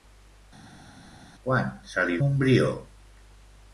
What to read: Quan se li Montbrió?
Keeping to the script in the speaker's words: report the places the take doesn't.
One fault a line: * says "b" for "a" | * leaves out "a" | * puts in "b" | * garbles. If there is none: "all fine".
all fine